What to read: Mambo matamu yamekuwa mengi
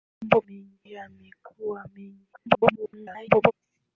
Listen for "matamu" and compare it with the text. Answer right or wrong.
wrong